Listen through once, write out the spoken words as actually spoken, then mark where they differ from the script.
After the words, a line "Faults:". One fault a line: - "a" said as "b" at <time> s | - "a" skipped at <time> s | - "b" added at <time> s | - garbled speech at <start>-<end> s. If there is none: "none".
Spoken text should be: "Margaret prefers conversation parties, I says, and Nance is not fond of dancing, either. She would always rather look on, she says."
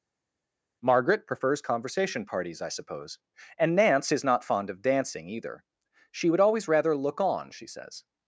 "Margaret prefers conversation parties, I suppose, and Nance is not fond of dancing, either. She would always rather look on, she says."
Faults:
- "says" said as "suppose" at 2.7 s